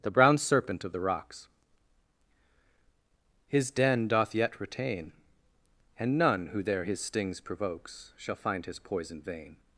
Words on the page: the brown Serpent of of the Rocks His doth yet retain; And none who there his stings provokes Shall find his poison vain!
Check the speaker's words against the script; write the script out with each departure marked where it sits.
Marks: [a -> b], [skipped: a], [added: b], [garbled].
the brown Serpent of [skipped: of] the Rocks His [added: den] doth yet retain; And none who there his stings provokes Shall find his poison vain!